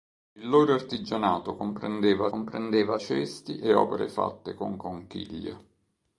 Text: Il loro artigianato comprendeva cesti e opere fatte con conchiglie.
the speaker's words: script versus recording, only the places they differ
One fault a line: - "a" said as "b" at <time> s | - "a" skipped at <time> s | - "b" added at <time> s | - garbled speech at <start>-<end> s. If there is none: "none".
- "comprendeva" added at 2.3 s